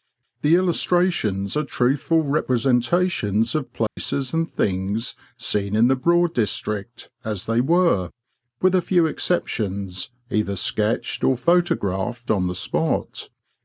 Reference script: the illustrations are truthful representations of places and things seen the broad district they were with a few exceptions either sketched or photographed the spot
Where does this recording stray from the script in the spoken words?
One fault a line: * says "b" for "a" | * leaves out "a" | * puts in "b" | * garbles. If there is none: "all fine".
* puts in "in"
* puts in "as"
* puts in "on"